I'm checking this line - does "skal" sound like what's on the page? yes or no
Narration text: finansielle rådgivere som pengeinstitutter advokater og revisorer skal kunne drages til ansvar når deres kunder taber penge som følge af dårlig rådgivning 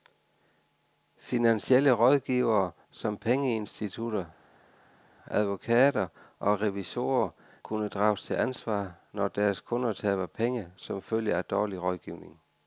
no